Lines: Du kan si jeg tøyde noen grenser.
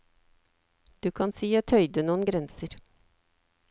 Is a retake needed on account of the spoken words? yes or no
no